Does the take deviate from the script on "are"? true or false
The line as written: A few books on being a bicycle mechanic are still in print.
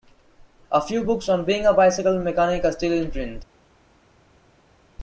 false